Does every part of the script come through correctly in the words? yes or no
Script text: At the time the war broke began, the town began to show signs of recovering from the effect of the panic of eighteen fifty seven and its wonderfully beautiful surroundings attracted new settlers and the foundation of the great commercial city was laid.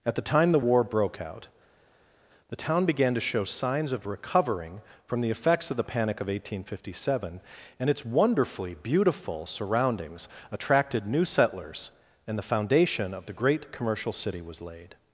no